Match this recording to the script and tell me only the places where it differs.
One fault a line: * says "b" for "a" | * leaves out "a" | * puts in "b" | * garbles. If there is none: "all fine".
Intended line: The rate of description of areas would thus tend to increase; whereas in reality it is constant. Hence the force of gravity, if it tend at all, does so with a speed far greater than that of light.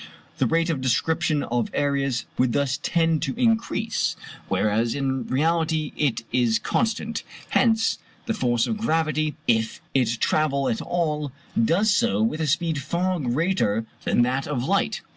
* says "travel" for "tend"